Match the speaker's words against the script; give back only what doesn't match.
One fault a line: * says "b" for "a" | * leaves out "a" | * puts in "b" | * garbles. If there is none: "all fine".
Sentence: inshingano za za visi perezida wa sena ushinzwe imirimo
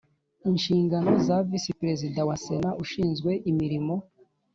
* leaves out "za"